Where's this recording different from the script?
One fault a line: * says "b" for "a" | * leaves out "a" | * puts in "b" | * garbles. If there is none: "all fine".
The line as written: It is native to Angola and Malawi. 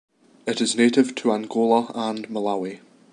all fine